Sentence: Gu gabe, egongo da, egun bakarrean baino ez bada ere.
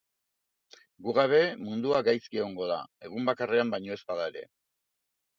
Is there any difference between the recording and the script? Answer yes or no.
yes